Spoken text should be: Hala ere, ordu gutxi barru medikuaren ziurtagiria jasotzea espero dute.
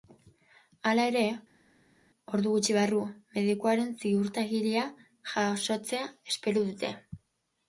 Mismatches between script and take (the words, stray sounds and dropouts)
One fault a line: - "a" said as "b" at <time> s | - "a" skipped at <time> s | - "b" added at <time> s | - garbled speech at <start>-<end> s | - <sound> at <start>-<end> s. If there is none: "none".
none